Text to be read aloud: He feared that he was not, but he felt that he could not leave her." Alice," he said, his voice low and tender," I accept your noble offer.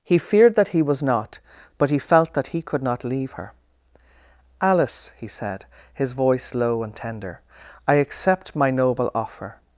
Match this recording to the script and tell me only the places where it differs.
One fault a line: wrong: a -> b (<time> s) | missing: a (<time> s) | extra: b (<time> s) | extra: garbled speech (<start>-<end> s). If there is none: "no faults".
wrong: your -> my (8.5 s)